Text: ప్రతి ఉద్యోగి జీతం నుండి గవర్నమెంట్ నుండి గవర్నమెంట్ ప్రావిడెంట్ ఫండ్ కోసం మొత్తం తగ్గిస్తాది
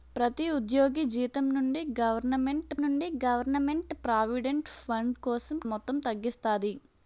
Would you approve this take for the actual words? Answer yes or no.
yes